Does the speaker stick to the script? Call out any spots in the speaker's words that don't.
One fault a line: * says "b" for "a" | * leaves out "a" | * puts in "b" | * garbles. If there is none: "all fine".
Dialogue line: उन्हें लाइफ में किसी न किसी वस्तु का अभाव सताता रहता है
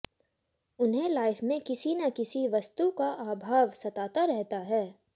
all fine